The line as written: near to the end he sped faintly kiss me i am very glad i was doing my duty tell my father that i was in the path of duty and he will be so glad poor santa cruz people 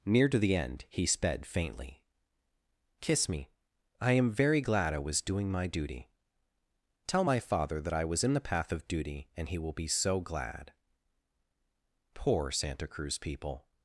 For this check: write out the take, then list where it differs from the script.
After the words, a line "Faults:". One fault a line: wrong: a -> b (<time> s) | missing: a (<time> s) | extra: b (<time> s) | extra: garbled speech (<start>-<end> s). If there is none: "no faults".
near to the end he sped faintly kiss me i am very glad i was doing my duty tell my father that i was in the path of duty and he will be so glad poor santa cruz people
Faults:
no faults